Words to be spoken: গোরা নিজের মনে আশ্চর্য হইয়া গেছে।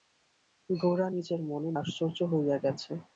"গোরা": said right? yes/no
yes